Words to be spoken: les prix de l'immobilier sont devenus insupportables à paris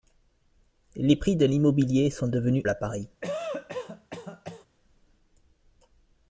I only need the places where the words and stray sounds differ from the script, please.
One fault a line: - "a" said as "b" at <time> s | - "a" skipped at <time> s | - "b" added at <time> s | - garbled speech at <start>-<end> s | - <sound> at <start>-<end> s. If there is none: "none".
- "insupportables" skipped at 2.6 s
- cough at 3.2-4.7 s